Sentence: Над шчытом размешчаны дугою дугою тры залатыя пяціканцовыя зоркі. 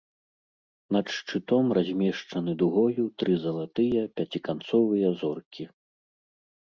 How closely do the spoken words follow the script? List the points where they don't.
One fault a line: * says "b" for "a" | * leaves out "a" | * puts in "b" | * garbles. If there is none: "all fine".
* leaves out "дугою"